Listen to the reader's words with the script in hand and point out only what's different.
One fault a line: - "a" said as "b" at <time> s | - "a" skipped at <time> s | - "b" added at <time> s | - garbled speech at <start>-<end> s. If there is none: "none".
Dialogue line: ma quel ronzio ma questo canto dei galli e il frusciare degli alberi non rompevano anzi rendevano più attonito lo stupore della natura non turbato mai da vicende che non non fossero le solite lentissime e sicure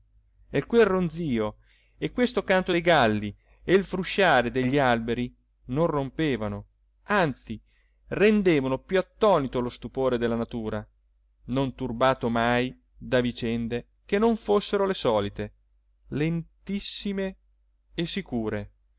- "ma" said as "e" at 0.5 s
- "ma" said as "e" at 2.0 s
- "non" skipped at 14.3 s